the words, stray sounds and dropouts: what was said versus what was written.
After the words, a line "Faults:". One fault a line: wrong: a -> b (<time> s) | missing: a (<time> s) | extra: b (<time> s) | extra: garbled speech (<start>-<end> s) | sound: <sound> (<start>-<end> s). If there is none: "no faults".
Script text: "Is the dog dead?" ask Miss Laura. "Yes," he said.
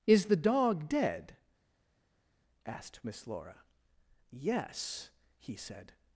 "Is the dog dead?" asked Miss Laura. "Yes," he said.
Faults:
wrong: ask -> asked (2.6 s)